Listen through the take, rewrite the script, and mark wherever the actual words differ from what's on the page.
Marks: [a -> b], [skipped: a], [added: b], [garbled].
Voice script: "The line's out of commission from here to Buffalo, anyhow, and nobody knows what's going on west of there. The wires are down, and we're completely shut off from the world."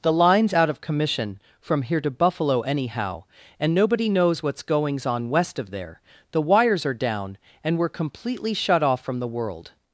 "The line's out of commission from here to Buffalo, anyhow, and nobody knows what's [going -> goings] on west of there. The wires are down, and we're completely shut off from the world."